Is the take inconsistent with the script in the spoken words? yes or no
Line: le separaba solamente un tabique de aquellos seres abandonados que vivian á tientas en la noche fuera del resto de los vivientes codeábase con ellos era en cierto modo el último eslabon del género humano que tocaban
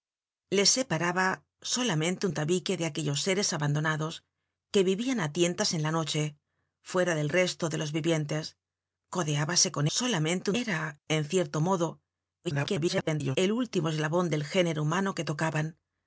yes